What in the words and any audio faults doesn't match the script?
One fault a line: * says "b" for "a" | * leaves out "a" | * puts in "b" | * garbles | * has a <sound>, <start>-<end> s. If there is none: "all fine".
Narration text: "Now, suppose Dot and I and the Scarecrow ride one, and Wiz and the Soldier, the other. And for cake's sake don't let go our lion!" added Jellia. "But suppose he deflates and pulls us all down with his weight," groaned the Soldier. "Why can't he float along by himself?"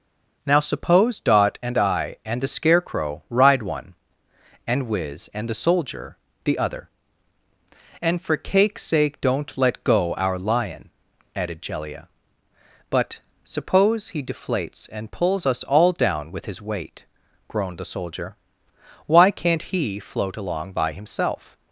all fine